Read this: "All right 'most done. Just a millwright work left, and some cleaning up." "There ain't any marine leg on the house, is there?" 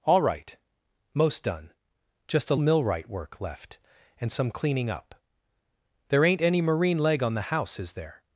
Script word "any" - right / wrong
right